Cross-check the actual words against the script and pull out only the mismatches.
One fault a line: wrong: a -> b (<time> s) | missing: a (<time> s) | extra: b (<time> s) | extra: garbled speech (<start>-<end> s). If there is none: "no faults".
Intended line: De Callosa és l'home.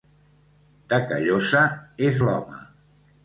no faults